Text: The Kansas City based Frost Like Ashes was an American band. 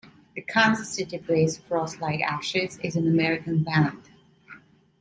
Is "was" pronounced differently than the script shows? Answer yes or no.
yes